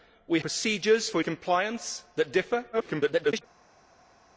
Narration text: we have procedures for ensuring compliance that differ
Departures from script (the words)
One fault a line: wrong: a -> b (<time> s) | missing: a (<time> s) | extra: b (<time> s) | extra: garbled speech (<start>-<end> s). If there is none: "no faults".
missing: have (0.4 s)
missing: ensuring (1.2 s)
extra: garbled speech (2.7-3.4 s)